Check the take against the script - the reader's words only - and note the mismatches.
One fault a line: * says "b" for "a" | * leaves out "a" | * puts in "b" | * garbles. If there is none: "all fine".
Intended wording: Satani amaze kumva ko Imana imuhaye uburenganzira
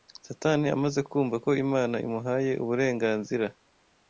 all fine